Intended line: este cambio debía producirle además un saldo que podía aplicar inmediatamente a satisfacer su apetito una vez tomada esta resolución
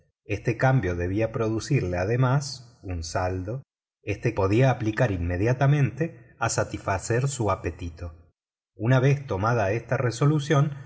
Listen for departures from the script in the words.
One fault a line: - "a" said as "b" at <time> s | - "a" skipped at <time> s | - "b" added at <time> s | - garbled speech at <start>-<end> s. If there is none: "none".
- "que" said as "este" at 4.0 s